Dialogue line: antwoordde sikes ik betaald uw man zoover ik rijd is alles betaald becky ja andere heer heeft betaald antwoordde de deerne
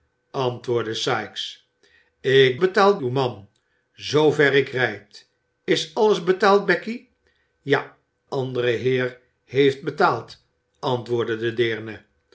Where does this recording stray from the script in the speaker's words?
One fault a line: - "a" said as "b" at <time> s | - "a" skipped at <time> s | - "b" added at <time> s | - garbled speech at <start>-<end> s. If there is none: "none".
none